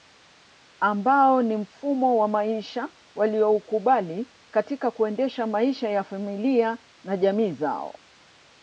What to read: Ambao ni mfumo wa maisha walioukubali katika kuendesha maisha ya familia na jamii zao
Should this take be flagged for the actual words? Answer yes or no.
no